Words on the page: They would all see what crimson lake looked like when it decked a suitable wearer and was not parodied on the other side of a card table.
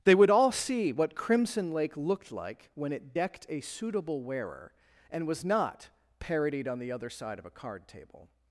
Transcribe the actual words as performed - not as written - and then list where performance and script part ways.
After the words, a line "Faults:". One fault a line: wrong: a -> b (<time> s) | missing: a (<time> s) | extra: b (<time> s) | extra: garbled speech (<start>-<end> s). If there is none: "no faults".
They would all see what crimson lake looked like when it decked a suitable wearer and was not parodied on the other side of a card table.
Faults:
no faults